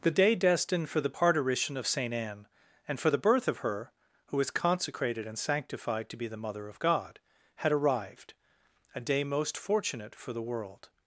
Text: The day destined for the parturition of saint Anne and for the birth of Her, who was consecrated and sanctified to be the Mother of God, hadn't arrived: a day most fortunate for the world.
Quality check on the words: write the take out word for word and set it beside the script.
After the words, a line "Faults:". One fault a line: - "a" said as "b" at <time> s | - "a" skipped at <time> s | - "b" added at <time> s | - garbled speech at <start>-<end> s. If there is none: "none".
The day destined for the parturition of saint Anne and for the birth of Her, who was consecrated and sanctified to be the Mother of God, had arrived: a day most fortunate for the world.
Faults:
- "hadn't" said as "had" at 7.6 s